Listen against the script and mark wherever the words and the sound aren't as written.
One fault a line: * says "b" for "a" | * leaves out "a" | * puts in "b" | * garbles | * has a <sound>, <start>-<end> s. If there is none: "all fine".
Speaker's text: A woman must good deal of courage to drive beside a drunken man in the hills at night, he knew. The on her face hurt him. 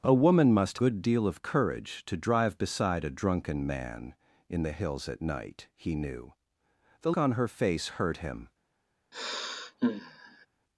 * has a sigh, 9.1-10.5 s